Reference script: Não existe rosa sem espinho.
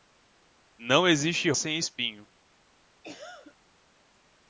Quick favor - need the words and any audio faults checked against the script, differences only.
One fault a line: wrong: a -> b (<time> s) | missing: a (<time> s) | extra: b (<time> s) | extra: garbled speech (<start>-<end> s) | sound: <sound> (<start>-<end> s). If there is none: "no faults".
missing: rosa (1.5 s)
sound: cough (3.0-3.6 s)